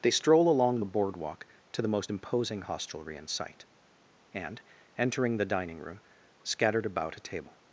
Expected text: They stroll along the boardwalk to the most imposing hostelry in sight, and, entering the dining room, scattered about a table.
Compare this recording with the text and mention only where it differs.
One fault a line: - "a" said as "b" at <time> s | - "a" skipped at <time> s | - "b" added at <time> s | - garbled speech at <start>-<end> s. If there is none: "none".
none